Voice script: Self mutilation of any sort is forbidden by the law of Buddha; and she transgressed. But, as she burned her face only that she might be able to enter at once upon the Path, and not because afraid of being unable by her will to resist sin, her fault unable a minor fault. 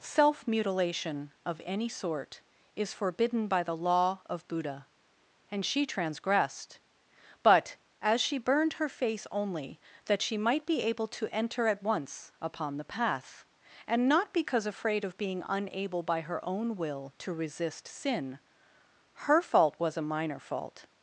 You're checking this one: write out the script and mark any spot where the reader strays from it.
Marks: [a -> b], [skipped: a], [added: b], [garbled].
Self mutilation of any sort is forbidden by the law of Buddha; and she transgressed. But, as she burned her face only that she might be able to enter at once upon the Path, and not because afraid of being unable by her [added: own] will to resist sin, her fault [unable -> was] a minor fault.